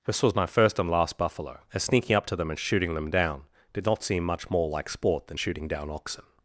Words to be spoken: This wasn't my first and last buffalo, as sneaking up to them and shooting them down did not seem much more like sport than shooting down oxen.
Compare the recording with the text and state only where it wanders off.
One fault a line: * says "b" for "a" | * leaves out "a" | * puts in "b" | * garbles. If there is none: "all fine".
* says "was" for "wasn't"